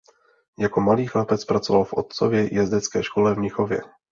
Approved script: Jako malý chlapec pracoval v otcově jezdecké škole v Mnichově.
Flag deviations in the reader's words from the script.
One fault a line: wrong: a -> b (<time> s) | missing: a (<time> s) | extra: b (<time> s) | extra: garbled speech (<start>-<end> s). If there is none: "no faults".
no faults